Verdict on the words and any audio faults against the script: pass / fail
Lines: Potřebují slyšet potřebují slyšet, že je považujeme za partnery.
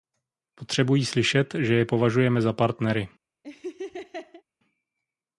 fail